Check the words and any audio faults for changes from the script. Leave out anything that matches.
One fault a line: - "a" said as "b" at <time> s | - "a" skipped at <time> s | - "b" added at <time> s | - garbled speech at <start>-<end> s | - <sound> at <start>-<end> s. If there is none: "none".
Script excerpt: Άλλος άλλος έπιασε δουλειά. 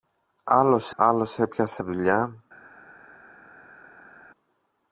none